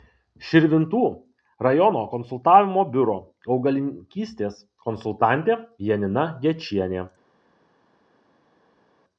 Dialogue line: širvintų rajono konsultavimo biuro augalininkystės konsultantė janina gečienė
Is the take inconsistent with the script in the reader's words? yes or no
no